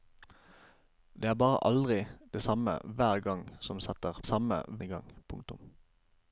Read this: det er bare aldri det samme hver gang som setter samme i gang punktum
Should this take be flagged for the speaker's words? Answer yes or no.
no